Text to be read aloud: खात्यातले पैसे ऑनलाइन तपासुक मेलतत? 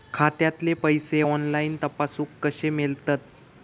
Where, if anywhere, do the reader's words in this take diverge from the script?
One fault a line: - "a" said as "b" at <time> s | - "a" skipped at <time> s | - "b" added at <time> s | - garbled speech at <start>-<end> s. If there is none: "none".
- "कशे" added at 2.4 s